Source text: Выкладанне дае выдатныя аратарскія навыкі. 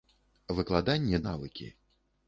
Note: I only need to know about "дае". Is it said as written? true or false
false